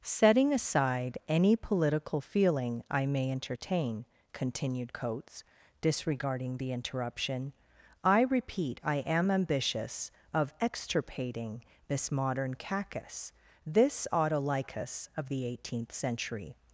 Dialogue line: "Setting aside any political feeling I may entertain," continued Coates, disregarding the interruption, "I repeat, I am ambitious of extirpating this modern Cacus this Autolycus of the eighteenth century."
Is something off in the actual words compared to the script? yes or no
no